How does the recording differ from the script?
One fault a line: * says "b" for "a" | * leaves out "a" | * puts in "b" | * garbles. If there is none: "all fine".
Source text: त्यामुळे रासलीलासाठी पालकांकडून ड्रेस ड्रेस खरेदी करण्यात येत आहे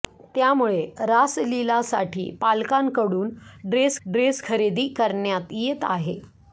all fine